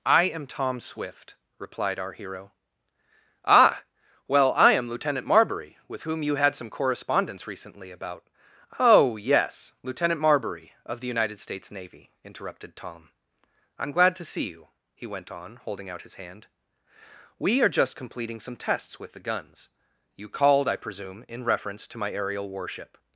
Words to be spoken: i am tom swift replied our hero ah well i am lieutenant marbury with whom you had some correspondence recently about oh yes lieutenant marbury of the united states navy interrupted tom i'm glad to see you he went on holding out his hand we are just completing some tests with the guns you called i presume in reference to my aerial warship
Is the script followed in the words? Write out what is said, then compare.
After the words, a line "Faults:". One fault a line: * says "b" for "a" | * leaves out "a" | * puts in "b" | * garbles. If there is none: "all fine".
i am tom swift replied our hero ah well i am lieutenant marbury with whom you had some correspondence recently about oh yes lieutenant marbury of the united states navy interrupted tom i'm glad to see you he went on holding out his hand we are just completing some tests with the guns you called i presume in reference to my aerial warship
Faults:
all fine